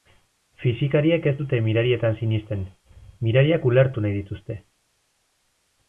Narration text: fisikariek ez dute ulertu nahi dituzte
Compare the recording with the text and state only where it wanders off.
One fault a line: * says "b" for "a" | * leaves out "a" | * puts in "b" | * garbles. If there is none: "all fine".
* puts in "mirarietan sinesten mirariak"